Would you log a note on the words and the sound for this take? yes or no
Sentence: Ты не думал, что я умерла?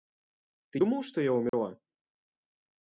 yes